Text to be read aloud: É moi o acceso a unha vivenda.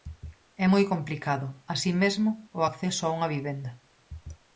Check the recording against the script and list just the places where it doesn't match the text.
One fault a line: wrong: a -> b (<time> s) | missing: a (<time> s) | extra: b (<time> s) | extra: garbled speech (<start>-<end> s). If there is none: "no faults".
extra: complicado así mesmo (0.9 s)